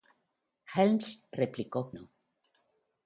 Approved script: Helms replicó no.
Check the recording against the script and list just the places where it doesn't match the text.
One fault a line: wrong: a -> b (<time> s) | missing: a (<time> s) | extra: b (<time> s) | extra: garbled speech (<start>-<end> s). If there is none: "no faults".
no faults